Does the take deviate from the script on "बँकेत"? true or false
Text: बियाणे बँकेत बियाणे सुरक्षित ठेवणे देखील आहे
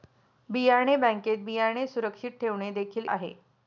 false